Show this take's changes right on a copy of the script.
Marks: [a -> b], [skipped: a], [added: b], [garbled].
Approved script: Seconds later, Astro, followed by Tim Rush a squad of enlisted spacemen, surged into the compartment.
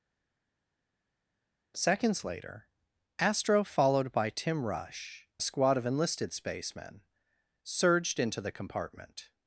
Seconds later, Astro, followed by Tim Rush a squad of enlisted spacemen, surged into the compartment.